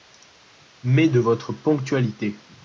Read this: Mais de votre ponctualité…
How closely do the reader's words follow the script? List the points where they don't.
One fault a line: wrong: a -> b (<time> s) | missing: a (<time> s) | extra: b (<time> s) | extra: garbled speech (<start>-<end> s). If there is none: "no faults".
no faults